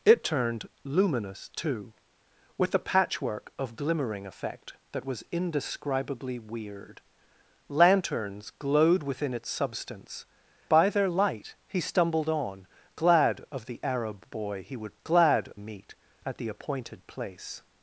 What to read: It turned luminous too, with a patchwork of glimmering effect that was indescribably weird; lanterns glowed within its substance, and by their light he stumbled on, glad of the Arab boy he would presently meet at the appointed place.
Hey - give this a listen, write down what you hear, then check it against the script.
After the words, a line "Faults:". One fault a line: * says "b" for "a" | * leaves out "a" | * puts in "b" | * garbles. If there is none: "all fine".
It turned luminous too, with a patchwork of glimmering effect that was indescribably weird; lanterns glowed within its substance, by their light he stumbled on, glad of the Arab boy he would glad meet at the appointed place.
Faults:
* leaves out "and"
* says "glad" for "presently"